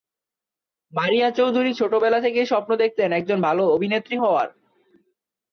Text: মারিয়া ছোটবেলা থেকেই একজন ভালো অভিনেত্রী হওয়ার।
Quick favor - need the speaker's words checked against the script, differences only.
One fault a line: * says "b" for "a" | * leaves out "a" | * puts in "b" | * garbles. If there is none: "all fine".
* puts in "চৌধুরী"
* puts in "স্বপ্ন দেখতেন"